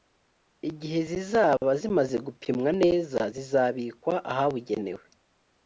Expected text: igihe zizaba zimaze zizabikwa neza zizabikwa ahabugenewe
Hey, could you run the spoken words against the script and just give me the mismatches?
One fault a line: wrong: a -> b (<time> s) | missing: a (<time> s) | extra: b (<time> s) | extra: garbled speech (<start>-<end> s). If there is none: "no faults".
wrong: zizabikwa -> gupimwa (2.2 s)